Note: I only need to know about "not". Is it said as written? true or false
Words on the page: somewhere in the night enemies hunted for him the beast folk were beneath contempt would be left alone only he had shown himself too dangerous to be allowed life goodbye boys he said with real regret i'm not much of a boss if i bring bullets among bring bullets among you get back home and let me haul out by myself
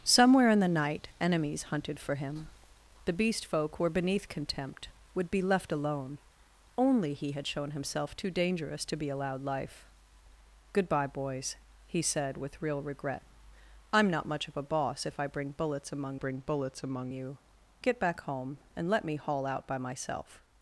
true